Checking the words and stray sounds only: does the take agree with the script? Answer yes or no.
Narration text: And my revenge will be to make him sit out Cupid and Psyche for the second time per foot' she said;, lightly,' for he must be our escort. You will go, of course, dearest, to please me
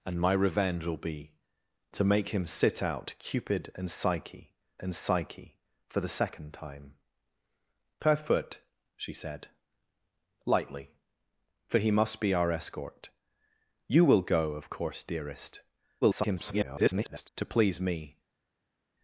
no